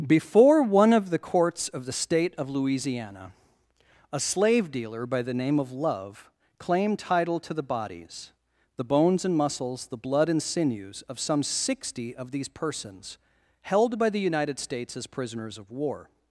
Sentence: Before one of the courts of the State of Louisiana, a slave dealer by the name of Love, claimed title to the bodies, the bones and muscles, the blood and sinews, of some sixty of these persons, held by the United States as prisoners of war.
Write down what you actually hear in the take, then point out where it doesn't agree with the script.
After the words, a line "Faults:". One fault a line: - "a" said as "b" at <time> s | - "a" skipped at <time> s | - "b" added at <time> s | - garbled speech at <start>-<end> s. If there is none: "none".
Before one of the courts of the State of Louisiana, a slave dealer by the name of Love, claimed title to the bodies, the bones and muscles, the blood and sinews, of some sixty of these persons, held by the United States as prisoners of war.
Faults:
none